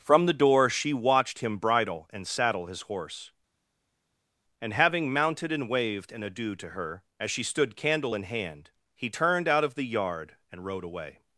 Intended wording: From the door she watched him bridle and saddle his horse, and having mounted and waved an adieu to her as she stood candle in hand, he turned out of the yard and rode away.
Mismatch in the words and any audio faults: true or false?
false